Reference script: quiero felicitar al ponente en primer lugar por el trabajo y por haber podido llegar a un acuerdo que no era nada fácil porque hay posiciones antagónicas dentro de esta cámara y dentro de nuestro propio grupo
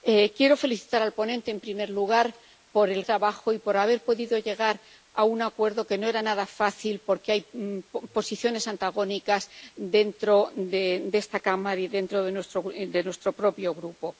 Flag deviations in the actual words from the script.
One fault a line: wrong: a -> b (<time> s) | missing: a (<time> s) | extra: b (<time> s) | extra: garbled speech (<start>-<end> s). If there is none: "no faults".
no faults